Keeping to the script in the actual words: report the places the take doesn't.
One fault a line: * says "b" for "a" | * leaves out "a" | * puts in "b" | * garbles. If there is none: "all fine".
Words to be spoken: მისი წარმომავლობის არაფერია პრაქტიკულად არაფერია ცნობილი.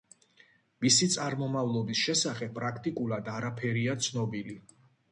* says "შესახებ" for "არაფერია"